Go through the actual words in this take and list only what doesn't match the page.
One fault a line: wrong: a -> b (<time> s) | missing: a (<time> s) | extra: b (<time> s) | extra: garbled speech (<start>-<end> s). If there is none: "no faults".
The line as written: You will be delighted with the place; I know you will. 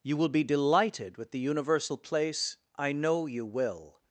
extra: universal (1.4 s)